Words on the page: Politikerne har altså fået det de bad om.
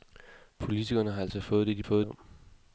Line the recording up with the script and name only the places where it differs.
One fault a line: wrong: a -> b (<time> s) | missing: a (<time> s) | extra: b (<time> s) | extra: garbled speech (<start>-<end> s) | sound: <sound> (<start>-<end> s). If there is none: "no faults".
wrong: bad -> fået (1.8 s)